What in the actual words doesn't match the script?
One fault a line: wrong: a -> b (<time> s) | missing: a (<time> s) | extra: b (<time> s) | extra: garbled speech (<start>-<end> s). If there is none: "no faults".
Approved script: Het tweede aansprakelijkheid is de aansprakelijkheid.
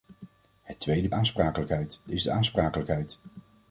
no faults